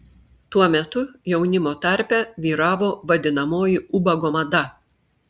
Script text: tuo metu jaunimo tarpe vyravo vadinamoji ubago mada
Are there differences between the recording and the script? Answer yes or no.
no